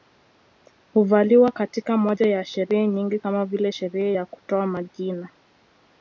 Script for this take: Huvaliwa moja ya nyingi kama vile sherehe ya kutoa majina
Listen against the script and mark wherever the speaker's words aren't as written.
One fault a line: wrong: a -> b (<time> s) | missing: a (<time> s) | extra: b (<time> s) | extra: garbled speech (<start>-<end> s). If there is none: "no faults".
extra: katika (1.5 s)
extra: sherehe (2.5 s)